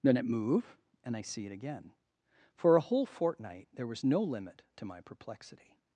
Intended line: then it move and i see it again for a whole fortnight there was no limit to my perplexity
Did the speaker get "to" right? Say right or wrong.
right